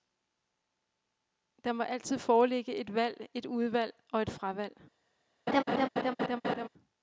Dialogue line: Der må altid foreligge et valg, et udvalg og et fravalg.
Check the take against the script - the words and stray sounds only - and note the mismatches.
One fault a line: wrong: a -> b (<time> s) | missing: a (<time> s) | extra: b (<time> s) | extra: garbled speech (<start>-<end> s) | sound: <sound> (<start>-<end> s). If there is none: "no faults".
sound: laugh (5.5-6.7 s)